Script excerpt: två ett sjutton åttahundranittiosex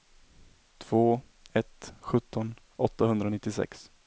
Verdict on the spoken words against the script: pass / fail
pass